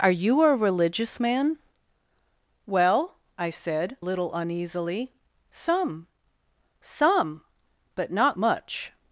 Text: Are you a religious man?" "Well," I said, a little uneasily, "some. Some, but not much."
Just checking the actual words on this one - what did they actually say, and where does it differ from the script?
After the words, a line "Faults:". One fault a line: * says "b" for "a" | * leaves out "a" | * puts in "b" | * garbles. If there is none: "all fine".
Are you a religious man?" "Well," I said, little uneasily, "some. Some, but not much."
Faults:
* leaves out "a"